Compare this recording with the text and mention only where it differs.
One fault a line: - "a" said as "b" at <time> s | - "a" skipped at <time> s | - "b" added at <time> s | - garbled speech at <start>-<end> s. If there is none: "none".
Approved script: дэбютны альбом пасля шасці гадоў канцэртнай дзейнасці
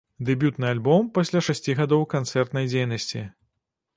none